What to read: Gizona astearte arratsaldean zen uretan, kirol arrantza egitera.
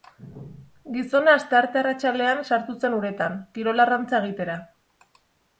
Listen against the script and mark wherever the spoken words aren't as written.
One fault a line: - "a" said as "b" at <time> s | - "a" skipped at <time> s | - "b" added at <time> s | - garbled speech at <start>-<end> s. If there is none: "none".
- "sartu" added at 2.5 s